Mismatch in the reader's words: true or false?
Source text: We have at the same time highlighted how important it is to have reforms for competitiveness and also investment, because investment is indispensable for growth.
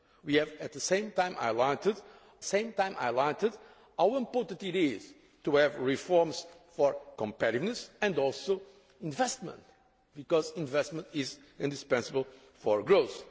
true